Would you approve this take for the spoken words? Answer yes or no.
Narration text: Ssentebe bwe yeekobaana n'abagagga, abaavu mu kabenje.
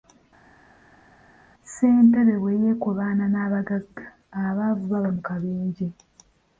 no